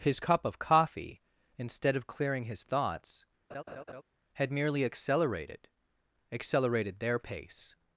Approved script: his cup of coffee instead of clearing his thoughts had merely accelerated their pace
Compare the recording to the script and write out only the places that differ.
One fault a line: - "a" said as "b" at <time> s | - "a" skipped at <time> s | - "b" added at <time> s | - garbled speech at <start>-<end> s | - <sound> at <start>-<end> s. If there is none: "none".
- laugh at 3.5-4.0 s
- "accelerated" added at 6.3 s